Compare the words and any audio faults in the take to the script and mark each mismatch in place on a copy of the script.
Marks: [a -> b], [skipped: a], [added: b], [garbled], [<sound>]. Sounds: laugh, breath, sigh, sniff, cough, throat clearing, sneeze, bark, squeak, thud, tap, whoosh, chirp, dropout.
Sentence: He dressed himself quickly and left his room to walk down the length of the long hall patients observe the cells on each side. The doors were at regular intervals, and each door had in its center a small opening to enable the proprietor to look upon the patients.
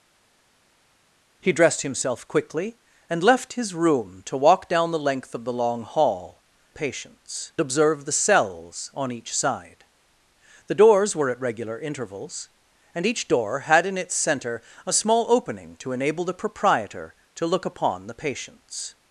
He dressed himself quickly and left his room to walk down the length of the long hall patients observe the cells on each side. The doors were at regular intervals, and each door had in its center a small opening to enable the proprietor to look upon the patients.